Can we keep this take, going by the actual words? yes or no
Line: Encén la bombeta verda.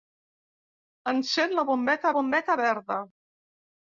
no